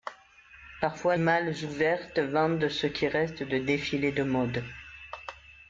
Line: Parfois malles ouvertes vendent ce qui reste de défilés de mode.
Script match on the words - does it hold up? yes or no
yes